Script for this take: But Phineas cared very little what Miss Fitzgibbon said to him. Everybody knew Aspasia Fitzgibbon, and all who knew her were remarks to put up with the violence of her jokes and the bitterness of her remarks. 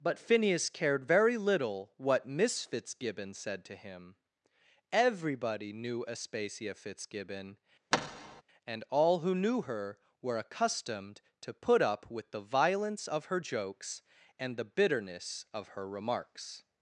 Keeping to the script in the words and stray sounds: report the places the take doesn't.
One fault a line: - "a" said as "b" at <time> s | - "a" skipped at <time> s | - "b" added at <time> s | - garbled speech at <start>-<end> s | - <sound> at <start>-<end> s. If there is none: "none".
- thud at 7.9-8.4 s
- "remarks" said as "accustomed" at 10.4 s